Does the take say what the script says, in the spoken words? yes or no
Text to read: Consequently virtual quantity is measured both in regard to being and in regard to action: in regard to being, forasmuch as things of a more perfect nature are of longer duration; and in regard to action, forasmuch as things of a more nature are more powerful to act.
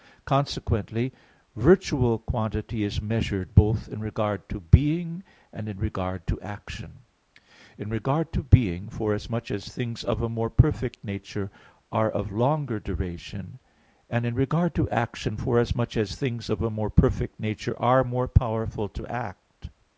no